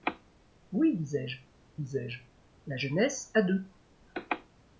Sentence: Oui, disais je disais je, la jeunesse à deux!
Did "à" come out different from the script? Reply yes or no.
no